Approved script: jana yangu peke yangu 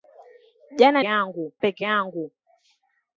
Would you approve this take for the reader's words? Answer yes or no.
yes